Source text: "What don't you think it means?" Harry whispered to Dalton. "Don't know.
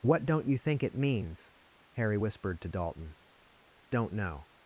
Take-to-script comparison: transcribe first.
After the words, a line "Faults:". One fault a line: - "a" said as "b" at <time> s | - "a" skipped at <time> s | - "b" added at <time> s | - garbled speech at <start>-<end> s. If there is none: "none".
"What don't you think it means?" Harry whispered to Dalton. "Don't know.
Faults:
none